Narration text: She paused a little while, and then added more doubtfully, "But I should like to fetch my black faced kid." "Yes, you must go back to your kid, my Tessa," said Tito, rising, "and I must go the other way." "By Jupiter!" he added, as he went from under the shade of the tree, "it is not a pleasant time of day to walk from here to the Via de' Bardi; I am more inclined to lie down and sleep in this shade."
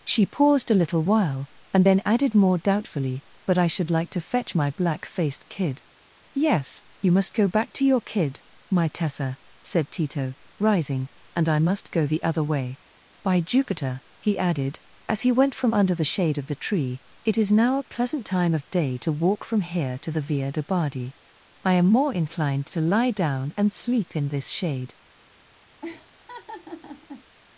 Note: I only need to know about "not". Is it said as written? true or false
false